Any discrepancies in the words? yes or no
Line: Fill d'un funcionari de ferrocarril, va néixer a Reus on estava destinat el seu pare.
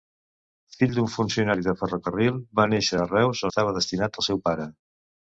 yes